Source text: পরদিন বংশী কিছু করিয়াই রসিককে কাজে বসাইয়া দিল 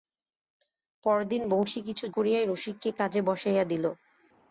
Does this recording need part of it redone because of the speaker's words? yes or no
no